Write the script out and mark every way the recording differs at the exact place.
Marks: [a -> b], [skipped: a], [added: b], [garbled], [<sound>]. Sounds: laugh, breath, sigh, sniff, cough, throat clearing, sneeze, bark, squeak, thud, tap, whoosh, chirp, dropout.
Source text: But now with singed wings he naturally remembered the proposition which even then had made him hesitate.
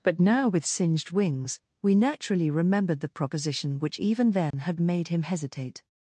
But now with singed wings [he -> we] naturally remembered the proposition which even then [dropout] had made him hesitate.